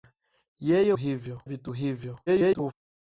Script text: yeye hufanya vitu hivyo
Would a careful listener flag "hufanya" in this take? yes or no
yes